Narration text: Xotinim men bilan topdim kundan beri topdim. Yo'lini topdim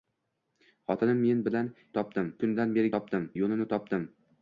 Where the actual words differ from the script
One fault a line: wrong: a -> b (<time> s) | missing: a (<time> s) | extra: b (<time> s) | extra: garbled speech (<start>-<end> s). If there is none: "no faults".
no faults